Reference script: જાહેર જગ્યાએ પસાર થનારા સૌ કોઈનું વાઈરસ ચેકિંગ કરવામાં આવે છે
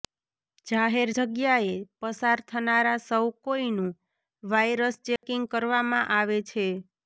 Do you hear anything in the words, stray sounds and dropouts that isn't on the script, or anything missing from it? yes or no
yes